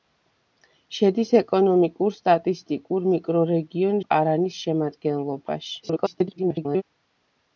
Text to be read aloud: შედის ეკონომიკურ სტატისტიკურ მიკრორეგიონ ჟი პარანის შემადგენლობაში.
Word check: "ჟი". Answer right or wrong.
wrong